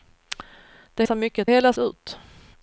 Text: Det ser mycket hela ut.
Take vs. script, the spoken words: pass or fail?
pass